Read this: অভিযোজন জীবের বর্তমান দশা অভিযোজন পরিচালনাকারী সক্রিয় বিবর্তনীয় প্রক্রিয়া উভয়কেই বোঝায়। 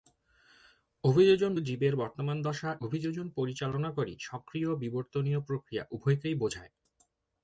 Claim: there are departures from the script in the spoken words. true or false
false